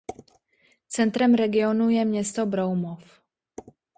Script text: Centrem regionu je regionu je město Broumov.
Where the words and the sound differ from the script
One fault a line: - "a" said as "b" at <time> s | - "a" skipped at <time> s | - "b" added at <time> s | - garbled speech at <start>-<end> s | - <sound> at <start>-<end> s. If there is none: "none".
- "regionu je" skipped at 2.0 s